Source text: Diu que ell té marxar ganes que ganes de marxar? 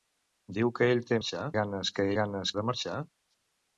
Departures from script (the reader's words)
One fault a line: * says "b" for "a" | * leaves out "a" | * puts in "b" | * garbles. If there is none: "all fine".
all fine